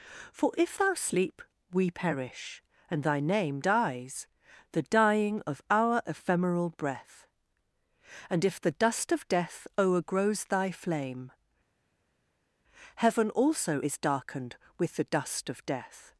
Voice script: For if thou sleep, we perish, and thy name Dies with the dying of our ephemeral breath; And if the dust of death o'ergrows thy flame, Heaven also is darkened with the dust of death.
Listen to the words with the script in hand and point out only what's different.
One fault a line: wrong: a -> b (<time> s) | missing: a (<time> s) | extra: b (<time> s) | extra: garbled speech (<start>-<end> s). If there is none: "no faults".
missing: with (4.3 s)